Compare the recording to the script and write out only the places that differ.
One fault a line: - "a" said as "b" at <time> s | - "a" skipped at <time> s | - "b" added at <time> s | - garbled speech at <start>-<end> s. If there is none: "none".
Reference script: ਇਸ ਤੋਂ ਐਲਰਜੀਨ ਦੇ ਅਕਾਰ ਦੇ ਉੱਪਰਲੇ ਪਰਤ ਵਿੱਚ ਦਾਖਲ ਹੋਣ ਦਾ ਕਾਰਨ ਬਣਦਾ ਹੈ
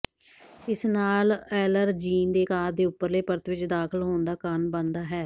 - "ਤੋਂ" said as "ਨਾਲ" at 0.8 s